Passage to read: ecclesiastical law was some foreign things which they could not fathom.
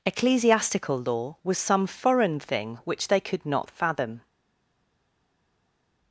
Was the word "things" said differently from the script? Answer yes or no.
yes